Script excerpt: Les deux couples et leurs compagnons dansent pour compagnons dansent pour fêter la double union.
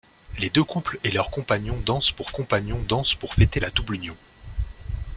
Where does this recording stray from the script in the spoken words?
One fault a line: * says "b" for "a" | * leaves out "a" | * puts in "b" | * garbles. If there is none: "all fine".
all fine